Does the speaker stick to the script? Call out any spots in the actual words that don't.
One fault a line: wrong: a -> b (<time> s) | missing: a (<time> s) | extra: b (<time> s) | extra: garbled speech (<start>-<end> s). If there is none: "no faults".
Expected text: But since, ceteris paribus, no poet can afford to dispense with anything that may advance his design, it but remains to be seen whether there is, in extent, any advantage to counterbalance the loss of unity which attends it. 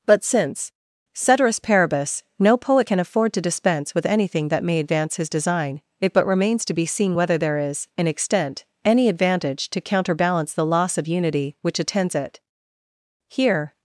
extra: Here (13.3 s)